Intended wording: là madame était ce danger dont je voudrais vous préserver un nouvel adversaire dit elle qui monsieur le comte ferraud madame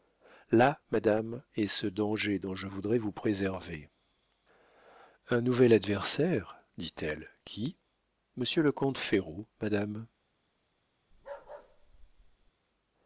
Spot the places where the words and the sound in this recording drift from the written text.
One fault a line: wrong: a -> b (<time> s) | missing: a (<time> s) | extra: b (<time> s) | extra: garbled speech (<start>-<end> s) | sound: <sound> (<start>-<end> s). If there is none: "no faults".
wrong: était -> est (1.6 s)
sound: bark (11.1-12.5 s)